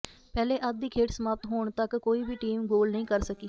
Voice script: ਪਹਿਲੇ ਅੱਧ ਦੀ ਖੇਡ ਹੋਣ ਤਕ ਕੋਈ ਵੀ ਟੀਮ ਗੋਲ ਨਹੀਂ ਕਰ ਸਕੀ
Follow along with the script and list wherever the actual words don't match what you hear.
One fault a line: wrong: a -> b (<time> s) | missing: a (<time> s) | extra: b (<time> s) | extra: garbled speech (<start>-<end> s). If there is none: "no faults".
extra: ਸਮਾਪਤ (1.1 s)